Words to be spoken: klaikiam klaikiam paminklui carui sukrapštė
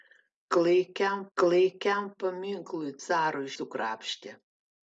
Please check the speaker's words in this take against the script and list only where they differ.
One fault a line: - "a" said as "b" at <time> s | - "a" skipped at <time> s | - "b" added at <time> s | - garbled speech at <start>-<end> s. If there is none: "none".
none